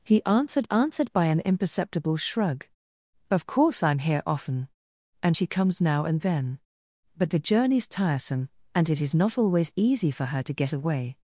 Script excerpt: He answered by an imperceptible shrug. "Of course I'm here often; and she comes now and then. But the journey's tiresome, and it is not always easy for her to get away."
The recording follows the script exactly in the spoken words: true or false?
false